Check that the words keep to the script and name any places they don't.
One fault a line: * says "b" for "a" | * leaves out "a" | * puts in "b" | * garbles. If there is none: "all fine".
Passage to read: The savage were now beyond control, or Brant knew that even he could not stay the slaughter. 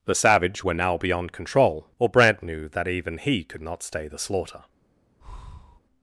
all fine